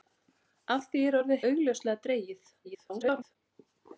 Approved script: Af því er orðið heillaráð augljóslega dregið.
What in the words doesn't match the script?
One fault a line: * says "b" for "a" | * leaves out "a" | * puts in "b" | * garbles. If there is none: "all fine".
* leaves out "heillaráð"
* garbles